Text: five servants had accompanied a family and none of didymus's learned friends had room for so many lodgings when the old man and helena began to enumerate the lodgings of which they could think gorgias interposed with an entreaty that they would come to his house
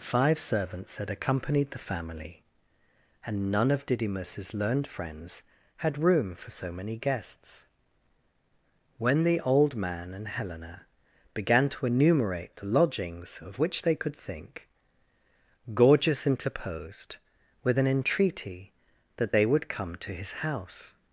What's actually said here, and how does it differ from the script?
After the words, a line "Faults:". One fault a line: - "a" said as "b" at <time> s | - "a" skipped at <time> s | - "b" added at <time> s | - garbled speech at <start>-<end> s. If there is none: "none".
five servants had accompanied the family and none of didymus's learned friends had room for so many guests when the old man and helena began to enumerate the lodgings of which they could think gorgias interposed with an entreaty that they would come to his house
Faults:
- "a" said as "the" at 1.7 s
- "lodgings" said as "guests" at 7.0 s